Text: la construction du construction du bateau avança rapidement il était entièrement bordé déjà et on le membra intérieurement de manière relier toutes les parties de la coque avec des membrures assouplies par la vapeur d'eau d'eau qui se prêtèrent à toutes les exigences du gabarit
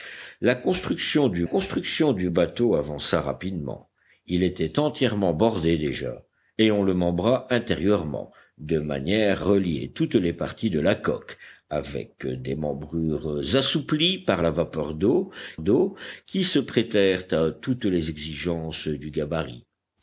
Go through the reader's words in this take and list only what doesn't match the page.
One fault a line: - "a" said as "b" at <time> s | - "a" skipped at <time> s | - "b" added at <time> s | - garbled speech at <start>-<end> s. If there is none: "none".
none